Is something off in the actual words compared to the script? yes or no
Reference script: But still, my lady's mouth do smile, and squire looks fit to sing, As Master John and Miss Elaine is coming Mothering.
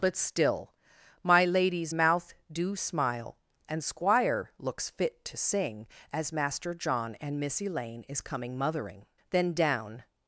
yes